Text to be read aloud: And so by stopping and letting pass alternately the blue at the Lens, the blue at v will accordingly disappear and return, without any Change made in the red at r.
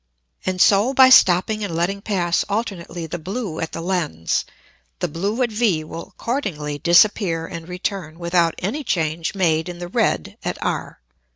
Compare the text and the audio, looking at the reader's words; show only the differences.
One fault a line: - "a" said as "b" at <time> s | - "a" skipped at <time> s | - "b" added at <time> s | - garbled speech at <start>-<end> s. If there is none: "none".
none